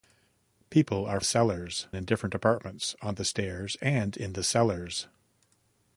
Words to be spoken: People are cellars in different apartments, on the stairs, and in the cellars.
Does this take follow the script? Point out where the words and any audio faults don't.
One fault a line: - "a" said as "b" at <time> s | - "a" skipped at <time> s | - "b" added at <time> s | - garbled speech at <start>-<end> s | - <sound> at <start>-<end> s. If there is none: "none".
none